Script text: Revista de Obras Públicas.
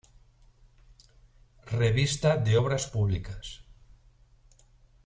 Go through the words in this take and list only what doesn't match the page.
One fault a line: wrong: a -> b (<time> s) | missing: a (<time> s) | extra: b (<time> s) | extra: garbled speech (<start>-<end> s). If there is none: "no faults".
no faults